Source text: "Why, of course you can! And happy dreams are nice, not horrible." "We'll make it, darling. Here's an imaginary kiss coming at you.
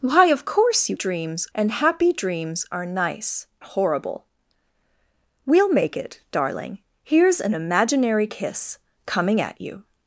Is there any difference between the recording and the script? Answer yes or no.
yes